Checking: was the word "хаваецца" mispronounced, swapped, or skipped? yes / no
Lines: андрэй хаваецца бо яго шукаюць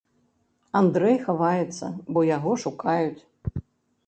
no